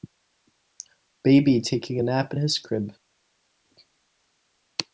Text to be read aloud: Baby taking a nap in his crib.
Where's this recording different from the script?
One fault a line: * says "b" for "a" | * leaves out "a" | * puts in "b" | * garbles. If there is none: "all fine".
all fine